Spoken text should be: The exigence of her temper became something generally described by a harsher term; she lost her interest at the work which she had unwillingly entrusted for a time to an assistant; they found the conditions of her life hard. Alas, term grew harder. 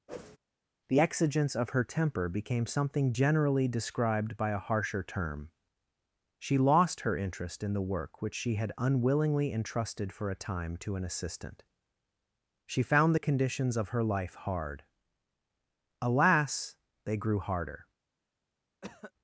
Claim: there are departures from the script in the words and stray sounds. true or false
true